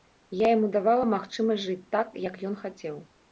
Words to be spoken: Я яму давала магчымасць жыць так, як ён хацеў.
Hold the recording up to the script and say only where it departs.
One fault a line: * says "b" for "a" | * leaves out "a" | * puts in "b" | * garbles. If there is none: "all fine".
all fine